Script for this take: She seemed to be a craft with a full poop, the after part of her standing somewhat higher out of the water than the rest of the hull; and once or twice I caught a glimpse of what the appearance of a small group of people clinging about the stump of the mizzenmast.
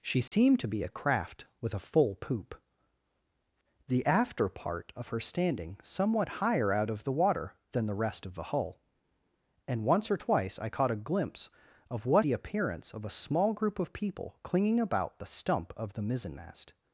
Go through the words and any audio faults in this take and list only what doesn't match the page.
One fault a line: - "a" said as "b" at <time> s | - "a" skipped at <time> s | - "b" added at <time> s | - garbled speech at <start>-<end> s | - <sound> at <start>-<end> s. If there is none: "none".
- dropout at 0.3-0.3 s